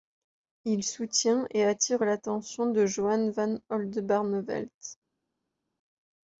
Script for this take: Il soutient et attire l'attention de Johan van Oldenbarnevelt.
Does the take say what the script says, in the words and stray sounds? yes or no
yes